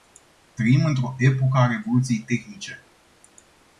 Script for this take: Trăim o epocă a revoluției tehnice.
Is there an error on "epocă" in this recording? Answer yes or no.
no